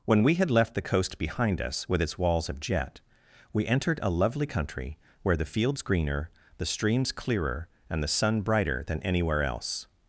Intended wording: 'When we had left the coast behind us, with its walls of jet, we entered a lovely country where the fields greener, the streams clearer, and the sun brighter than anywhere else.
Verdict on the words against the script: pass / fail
pass